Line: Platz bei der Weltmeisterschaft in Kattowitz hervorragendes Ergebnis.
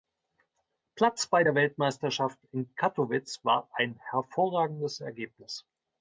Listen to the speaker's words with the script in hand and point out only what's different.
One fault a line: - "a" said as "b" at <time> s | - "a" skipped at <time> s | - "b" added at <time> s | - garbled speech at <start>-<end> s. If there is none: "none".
- "war ein" added at 3.4 s